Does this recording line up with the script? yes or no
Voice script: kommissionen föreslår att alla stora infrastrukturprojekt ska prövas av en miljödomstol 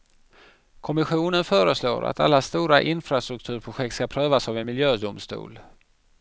yes